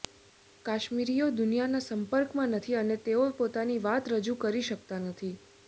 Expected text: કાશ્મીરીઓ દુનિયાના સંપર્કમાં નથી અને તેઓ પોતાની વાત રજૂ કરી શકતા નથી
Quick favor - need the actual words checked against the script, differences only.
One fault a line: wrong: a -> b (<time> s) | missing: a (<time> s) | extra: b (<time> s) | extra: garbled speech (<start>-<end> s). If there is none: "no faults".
no faults